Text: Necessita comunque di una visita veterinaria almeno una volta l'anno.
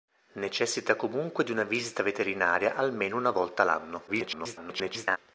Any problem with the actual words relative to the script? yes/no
yes